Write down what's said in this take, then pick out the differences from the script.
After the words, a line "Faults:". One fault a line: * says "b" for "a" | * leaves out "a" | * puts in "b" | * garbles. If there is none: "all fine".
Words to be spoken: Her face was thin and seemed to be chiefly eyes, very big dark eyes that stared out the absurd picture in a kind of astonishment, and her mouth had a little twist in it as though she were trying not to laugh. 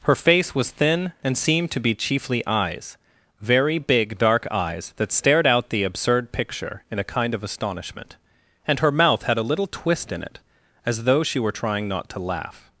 Her face was thin and seemed to be chiefly eyes, very big dark eyes that stared out the absurd picture in a kind of astonishment, and her mouth had a little twist in it as though she were trying not to laugh.
Faults:
all fine